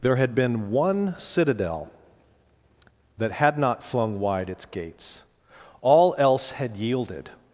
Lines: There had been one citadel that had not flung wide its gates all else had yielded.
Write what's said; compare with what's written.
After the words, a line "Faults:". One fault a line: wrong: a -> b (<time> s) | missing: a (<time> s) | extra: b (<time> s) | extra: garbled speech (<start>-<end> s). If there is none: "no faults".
There had been one citadel that had not flung wide its gates all else had yielded.
Faults:
no faults